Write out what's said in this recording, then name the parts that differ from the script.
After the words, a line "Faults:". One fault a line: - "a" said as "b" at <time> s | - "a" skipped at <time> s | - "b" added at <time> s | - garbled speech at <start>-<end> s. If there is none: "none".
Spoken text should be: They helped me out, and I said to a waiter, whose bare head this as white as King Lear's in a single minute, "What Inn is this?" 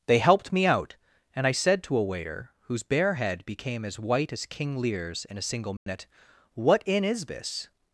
They helped me out, and I said to a waiter, whose bare head became as white as King Lear's in a single minute, "What Inn is this?"
Faults:
- "this" said as "became" at 3.5 s